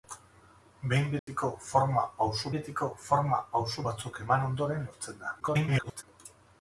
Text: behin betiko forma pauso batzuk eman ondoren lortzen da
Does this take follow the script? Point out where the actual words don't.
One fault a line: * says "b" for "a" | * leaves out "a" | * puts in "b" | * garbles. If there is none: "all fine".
* puts in "betiko forma pauso"
* garbles